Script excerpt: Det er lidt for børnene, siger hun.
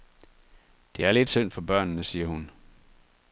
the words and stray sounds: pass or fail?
fail